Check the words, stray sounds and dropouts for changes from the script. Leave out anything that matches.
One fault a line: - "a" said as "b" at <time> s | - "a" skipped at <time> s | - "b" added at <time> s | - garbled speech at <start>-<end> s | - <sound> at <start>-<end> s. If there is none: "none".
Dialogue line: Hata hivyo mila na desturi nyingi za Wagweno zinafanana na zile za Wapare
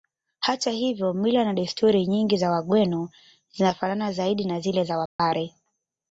- "zaidi" added at 4.1 s
- dropout at 5.1-5.2 s